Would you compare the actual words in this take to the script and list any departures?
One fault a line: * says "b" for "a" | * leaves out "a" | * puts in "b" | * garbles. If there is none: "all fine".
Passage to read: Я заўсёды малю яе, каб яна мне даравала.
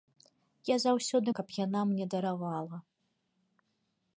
* leaves out "малю яе"